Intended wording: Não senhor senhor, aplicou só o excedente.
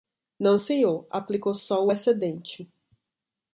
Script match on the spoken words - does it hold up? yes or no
no